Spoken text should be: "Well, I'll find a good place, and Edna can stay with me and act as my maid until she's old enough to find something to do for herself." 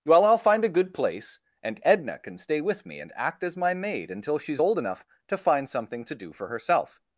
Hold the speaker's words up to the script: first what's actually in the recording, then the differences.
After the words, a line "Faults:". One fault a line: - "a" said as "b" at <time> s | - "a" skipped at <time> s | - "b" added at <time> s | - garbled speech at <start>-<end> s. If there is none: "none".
"Well, I'll find a good place, and Edna can stay with me and act as my maid until she's old enough to find something to do for herself."
Faults:
none